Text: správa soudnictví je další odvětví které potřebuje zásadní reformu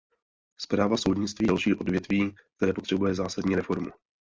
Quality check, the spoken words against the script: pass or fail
fail